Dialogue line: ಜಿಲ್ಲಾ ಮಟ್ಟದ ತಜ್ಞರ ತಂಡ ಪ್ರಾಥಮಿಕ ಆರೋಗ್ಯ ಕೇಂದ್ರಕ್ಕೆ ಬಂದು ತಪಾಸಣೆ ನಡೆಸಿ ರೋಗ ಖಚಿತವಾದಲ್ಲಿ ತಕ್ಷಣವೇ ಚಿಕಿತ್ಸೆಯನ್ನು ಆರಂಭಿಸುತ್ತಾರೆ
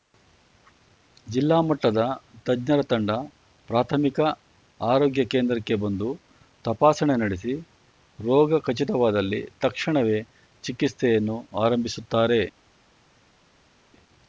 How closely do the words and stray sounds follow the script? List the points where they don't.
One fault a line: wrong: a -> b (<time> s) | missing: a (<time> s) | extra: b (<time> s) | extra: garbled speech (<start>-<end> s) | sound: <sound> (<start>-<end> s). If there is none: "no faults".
no faults